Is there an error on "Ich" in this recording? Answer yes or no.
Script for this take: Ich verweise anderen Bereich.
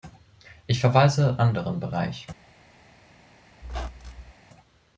no